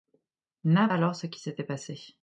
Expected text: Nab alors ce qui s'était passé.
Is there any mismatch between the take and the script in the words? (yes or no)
no